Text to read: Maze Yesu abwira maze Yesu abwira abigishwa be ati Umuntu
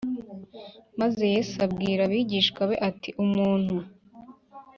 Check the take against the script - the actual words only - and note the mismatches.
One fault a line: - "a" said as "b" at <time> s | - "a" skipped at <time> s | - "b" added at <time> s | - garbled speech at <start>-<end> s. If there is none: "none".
- "maze Yesu abwira" skipped at 2.0 s